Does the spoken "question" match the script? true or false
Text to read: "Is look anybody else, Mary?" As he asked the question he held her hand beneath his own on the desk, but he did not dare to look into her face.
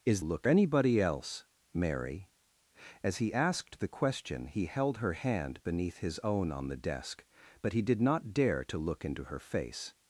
true